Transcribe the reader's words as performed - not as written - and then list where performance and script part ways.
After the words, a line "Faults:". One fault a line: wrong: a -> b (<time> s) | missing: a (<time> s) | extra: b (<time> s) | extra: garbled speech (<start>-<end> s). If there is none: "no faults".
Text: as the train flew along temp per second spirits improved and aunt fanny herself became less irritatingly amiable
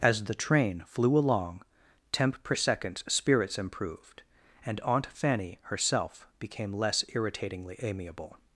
as the train flew along temp per second spirits improved and aunt fanny herself became less irritatingly amiable
Faults:
no faults